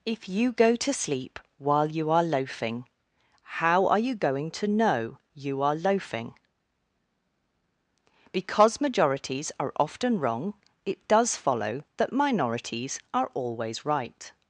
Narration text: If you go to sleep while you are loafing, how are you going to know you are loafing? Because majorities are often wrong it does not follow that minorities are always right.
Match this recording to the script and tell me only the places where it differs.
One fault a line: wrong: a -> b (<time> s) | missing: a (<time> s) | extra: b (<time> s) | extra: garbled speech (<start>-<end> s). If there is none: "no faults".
missing: not (11.4 s)